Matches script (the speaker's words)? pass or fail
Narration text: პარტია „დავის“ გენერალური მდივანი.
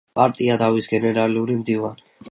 pass